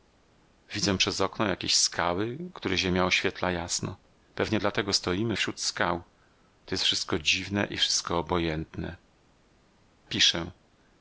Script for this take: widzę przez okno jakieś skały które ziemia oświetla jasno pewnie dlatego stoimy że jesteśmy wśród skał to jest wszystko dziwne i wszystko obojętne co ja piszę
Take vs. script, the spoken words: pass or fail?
fail